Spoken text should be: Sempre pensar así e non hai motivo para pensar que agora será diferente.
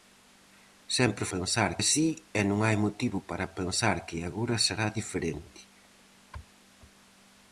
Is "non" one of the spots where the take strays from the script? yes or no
no